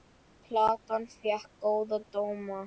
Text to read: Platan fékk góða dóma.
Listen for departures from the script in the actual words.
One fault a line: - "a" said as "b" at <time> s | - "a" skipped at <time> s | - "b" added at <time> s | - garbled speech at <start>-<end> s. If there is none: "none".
none